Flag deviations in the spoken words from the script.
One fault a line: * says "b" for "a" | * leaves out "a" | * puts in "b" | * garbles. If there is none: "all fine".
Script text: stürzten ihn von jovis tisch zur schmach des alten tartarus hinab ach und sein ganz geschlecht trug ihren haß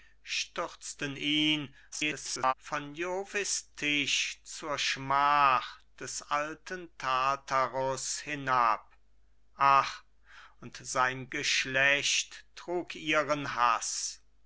* garbles
* leaves out "ganz"